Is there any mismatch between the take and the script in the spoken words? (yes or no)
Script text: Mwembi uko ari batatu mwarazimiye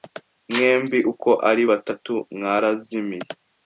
no